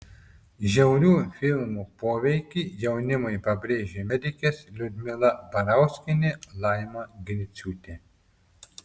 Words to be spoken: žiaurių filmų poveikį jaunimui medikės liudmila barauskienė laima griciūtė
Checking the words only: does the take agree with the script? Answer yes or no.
no